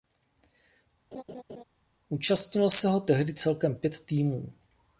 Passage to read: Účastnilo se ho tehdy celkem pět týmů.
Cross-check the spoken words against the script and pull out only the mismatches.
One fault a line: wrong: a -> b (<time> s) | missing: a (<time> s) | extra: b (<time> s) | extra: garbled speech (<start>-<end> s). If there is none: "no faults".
no faults